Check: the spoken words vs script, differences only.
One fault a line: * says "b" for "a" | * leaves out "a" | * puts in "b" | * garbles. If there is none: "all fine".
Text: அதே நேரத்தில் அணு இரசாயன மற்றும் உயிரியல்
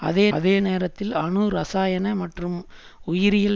* puts in "அதே"